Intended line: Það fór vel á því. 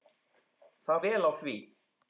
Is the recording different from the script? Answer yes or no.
yes